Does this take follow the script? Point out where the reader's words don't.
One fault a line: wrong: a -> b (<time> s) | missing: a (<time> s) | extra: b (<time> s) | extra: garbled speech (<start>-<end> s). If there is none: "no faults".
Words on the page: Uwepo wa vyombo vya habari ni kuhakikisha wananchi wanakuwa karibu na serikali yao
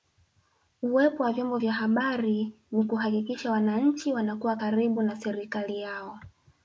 no faults